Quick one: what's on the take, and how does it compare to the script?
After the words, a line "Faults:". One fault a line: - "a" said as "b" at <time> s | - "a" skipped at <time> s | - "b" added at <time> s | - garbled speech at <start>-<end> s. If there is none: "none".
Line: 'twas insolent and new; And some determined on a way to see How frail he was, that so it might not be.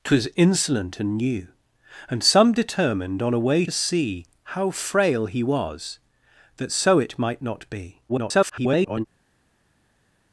'twas insolent and new; And some determined on a way see How frail he was, that so it might not be. [garbled]
Faults:
- "to" skipped at 3.6 s
- garbled speech at 8.1-9.1 s